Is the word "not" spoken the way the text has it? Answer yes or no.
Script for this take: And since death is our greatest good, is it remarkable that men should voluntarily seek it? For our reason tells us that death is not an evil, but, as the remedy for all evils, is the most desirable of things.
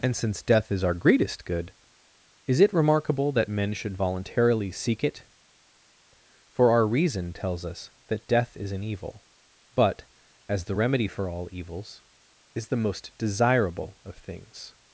no